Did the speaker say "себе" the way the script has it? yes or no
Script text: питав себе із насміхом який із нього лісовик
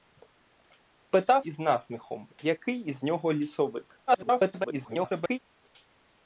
no